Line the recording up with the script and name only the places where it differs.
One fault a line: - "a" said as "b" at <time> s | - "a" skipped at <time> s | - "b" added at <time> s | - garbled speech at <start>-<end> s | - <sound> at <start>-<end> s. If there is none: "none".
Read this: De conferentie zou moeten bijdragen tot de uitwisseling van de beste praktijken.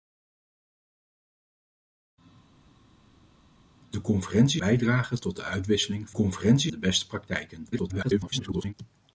- "zou moeten" skipped at 4.6 s
- "van" said as "conferentie" at 6.1 s
- garbled speech at 7.7-8.7 s